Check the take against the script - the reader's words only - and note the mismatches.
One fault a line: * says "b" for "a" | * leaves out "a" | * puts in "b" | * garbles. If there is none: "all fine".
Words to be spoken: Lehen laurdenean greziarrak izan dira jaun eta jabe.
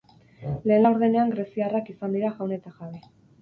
all fine